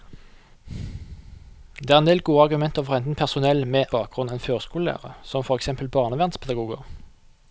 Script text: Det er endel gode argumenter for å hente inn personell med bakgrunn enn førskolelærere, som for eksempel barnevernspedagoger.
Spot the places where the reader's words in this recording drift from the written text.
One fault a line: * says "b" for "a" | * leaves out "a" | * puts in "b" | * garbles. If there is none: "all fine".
all fine